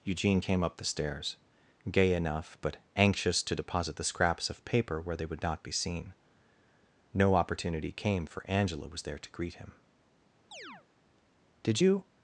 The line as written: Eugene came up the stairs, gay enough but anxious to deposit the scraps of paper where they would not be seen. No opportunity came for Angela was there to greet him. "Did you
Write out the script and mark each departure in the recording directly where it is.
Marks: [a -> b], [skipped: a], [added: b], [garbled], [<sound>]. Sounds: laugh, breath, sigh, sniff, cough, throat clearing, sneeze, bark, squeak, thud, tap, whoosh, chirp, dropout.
Eugene came up the stairs, gay enough but anxious to deposit the scraps of paper where they would not be seen. No opportunity came for Angela was there to greet him. [chirp] "Did you